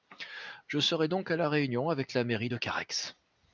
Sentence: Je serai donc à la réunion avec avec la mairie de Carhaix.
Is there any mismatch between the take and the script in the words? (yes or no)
yes